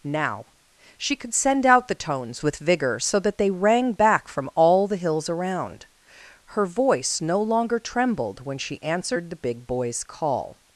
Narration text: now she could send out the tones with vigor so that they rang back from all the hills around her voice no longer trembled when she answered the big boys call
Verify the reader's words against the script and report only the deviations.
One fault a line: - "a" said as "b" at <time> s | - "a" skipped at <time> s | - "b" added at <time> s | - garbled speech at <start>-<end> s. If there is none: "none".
none